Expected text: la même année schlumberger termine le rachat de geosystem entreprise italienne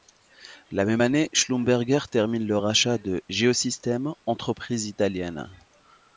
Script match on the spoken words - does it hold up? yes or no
yes